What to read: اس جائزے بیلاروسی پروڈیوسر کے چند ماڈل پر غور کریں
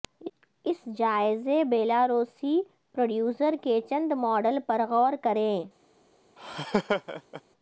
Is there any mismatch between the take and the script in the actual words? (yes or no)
no